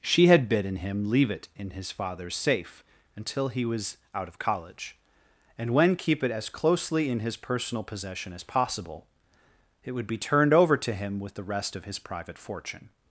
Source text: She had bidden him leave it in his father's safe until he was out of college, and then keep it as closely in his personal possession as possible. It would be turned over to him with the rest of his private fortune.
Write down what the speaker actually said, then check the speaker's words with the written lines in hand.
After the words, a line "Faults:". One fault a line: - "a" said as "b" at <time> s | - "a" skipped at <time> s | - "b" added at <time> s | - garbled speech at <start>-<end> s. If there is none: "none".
She had bidden him leave it in his father's safe until he was out of college, and when keep it as closely in his personal possession as possible. It would be turned over to him with the rest of his private fortune.
Faults:
- "then" said as "when" at 5.7 s